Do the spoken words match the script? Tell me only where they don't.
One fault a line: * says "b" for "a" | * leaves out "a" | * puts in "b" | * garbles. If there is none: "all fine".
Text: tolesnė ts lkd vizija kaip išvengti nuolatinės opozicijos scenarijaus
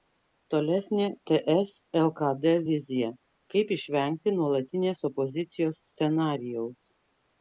all fine